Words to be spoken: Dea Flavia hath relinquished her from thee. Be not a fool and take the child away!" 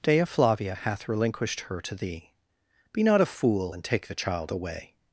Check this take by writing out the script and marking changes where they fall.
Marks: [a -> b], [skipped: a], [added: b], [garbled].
Dea Flavia hath relinquished her [from -> to] thee. Be not a fool and take the child away!"